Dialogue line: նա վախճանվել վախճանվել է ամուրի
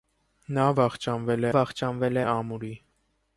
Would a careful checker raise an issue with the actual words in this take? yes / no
no